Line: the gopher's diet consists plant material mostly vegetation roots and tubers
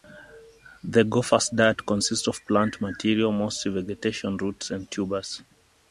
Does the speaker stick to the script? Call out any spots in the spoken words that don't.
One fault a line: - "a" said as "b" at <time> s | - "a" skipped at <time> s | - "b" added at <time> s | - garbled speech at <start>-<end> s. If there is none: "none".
- "of" added at 2.3 s